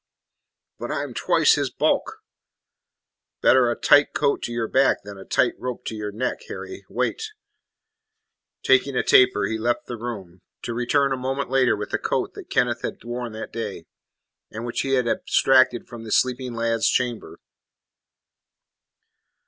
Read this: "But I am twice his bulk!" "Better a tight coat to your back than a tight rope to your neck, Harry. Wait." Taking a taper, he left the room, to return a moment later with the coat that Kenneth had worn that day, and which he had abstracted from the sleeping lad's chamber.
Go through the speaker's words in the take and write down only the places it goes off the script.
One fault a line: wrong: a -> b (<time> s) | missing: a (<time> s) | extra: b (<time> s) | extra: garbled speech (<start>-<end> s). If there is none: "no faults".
no faults